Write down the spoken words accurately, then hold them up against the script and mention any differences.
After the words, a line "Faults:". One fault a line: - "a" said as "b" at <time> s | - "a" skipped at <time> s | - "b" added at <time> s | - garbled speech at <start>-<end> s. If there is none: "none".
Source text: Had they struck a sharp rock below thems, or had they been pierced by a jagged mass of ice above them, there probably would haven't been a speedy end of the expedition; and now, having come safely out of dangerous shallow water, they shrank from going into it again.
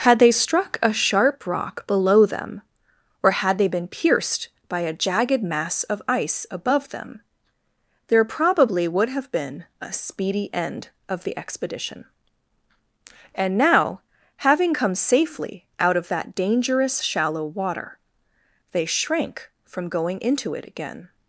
Had they struck a sharp rock below them, or had they been pierced by a jagged mass of ice above them, there probably would have been a speedy end of the expedition; and now, having come safely out of that dangerous shallow water, they shrank from going into it again.
Faults:
- "thems" said as "them" at 2.2 s
- "haven't" said as "have" at 9.1 s
- "that" added at 16.1 s